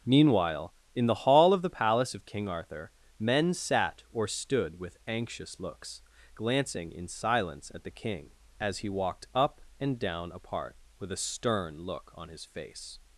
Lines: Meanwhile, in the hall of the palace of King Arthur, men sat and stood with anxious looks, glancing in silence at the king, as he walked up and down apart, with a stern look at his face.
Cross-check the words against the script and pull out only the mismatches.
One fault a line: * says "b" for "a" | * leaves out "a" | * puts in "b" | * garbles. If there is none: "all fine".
* says "or" for "and"
* says "on" for "at"